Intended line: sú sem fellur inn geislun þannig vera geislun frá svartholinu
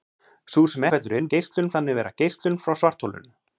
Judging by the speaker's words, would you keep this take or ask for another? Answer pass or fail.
pass